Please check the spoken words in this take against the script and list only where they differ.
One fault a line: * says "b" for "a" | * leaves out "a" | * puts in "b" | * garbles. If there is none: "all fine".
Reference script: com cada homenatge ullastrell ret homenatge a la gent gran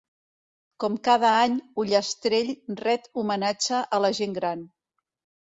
* says "any" for "homenatge"